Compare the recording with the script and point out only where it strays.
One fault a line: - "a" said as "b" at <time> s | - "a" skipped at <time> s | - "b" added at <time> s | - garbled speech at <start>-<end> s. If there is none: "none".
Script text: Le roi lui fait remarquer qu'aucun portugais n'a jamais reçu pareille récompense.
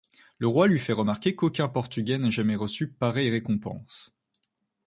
none